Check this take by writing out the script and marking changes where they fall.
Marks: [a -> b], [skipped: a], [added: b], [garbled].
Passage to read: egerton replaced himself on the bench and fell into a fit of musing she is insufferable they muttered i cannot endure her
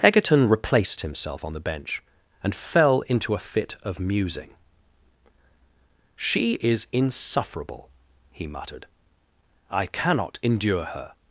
egerton replaced himself on the bench and fell into a fit of musing she is insufferable [they -> he] muttered i cannot endure her